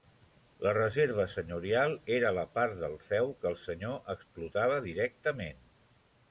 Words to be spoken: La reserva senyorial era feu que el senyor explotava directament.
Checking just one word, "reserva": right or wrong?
right